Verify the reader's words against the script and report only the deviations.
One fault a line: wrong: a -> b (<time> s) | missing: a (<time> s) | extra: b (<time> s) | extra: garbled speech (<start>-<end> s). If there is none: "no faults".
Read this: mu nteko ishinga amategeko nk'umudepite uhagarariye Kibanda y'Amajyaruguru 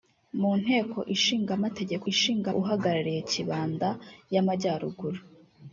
wrong: nk'umudepite -> ishinga (2.1 s)